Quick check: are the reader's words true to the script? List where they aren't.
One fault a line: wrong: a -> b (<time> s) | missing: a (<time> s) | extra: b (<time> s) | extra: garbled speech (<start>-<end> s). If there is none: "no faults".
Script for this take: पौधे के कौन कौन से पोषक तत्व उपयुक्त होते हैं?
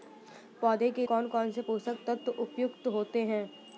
no faults